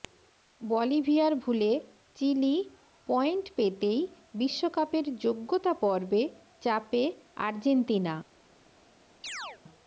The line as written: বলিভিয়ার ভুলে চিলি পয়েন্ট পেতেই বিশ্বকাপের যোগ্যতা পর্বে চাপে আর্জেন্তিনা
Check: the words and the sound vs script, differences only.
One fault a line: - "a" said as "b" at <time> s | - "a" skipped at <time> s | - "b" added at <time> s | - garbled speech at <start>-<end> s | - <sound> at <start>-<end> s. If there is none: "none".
- chirp at 9.2-9.6 s